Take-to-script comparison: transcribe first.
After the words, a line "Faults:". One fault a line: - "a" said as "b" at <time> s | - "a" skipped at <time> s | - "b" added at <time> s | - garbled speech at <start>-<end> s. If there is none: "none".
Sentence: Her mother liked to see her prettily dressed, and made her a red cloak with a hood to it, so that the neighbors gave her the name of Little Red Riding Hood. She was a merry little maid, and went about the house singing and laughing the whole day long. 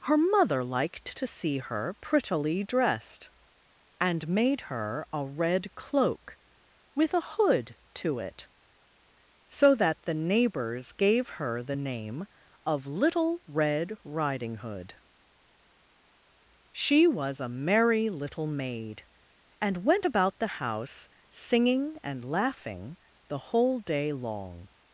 Her mother liked to see her prettily dressed, and made her a red cloak with a hood to it, so that the neighbors gave her the name of Little Red Riding Hood. She was a merry little maid, and went about the house singing and laughing the whole day long.
Faults:
none